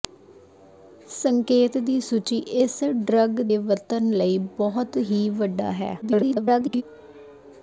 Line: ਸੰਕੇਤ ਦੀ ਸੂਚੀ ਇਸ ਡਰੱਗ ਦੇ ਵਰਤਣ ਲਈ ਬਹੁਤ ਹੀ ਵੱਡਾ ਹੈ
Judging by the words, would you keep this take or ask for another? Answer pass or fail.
fail